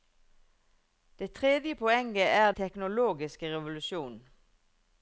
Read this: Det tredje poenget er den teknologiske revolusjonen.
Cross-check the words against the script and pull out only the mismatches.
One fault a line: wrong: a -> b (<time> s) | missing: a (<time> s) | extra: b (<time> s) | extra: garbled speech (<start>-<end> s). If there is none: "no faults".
missing: den (2.5 s)